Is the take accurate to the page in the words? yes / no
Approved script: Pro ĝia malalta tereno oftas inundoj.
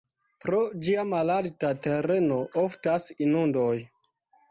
yes